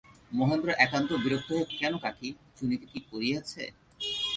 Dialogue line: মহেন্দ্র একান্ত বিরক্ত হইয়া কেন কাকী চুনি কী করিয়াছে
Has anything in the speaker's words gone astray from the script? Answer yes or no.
no